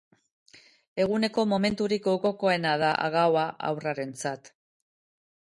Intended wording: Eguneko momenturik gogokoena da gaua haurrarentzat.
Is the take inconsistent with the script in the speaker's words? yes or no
no